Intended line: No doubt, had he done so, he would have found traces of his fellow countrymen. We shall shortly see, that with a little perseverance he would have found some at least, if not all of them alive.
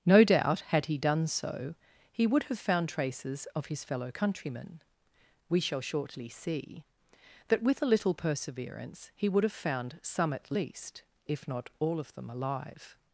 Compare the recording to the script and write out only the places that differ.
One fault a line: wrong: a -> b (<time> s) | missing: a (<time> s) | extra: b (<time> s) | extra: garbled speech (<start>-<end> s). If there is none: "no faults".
no faults